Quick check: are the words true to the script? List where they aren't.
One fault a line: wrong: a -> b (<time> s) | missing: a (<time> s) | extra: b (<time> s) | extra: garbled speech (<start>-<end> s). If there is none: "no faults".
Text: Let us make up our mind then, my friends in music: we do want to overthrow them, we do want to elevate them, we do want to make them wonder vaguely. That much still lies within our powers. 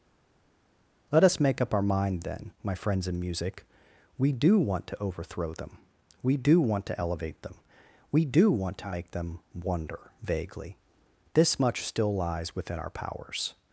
wrong: That -> This (11.3 s)